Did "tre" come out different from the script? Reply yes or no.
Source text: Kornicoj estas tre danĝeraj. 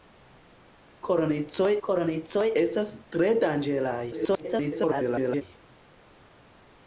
no